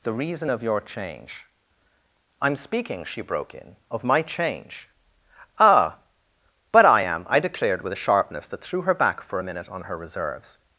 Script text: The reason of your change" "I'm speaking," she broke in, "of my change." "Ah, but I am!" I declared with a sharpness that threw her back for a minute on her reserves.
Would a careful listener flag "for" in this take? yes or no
no